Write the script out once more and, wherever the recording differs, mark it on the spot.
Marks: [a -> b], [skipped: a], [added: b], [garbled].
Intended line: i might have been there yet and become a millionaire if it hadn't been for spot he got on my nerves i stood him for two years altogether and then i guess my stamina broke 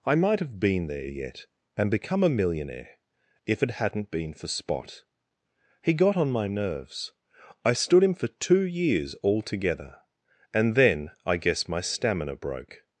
i might have been there yet and become a millionaire if it hadn't been for spot he got on my nerves i stood him for two years altogether and then i guess my stamina broke